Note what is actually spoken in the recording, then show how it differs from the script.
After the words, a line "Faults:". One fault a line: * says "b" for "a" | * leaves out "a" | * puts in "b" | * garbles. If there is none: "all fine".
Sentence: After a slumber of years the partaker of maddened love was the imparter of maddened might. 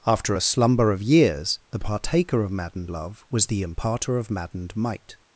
After a slumber of years the partaker of maddened love was the imparter of maddened might.
Faults:
all fine